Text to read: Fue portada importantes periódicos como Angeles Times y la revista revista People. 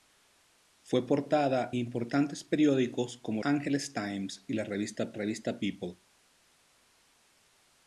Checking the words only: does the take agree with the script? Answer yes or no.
yes